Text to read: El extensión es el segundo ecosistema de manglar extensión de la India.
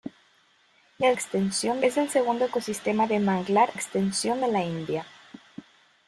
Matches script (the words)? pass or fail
pass